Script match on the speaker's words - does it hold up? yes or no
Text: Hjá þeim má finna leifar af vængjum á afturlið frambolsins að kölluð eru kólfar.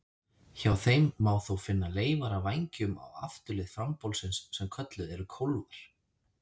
no